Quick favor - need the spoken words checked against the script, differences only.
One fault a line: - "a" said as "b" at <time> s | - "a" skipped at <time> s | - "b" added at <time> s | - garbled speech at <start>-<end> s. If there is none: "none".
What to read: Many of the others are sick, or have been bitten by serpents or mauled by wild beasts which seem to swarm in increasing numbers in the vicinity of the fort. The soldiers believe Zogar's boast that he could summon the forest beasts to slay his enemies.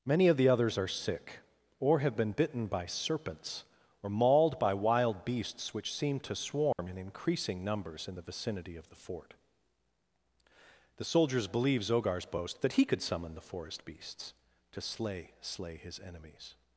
- "slay" added at 15.4 s